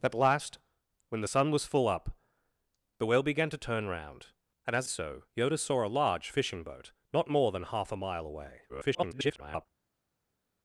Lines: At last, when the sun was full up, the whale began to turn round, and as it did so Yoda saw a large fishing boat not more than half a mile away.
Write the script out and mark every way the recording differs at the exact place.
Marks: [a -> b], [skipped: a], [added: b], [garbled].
At last, when the sun was full up, the whale began to turn round, and as [skipped: it did] so Yoda saw a large fishing boat not more than half a mile away. [garbled]